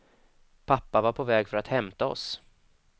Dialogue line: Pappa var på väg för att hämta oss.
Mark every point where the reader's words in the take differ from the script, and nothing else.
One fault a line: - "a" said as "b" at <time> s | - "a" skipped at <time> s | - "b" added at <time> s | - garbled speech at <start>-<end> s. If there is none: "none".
none